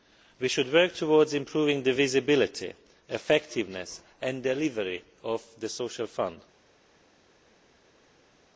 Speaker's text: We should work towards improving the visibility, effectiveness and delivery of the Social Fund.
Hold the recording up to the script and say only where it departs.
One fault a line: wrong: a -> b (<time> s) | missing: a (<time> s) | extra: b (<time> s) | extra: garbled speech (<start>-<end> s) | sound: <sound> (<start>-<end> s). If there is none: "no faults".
no faults